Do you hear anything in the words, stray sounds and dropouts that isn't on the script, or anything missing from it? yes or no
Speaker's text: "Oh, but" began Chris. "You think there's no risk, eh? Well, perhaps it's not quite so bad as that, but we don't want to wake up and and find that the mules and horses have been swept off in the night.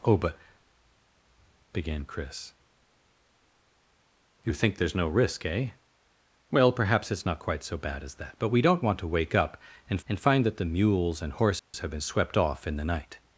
yes